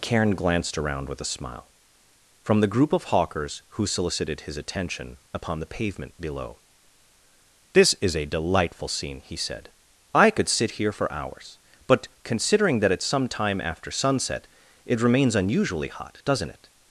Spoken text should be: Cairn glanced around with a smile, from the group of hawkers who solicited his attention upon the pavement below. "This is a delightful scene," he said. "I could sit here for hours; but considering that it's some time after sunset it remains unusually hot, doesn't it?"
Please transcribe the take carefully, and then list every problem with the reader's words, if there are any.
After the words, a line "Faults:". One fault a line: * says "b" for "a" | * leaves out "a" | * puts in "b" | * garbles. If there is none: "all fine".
Cairn glanced around with a smile, from the group of hawkers who solicited his attention upon the pavement below. "This is a delightful scene," he said. "I could sit here for hours; but considering that it's some time after sunset it remains unusually hot, doesn't it?"
Faults:
all fine